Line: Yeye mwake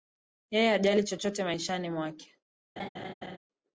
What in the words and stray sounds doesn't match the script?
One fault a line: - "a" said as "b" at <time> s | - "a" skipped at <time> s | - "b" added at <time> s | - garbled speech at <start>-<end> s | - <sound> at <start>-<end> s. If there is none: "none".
- "hajali chochote maishani" added at 0.7 s
- laugh at 2.8-3.4 s